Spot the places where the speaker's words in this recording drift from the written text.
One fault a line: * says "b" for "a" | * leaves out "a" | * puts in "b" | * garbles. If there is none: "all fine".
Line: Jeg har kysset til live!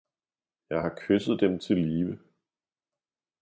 * puts in "dem"